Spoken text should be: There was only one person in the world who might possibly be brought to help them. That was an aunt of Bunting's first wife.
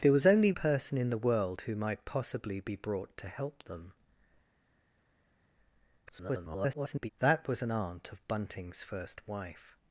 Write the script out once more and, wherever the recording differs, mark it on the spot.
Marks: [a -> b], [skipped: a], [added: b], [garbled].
There was only [skipped: one] person in the world who might possibly be brought to help them. [garbled] That was an aunt of Bunting's first wife.